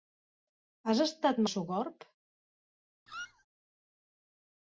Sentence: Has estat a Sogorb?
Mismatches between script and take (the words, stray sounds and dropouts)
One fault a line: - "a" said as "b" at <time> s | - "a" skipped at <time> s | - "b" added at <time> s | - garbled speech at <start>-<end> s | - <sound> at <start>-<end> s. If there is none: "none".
- squeak at 3.1-3.5 s